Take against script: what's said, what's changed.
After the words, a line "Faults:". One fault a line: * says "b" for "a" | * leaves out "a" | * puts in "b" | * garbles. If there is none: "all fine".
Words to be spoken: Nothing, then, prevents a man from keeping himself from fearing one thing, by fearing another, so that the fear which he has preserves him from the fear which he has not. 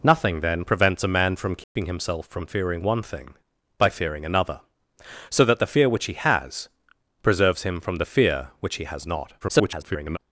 Nothing, then, prevents a man from keeping himself from fearing one thing, by fearing another, so that the fear which he has preserves him from the fear which he has not. [garbled]
Faults:
* garbles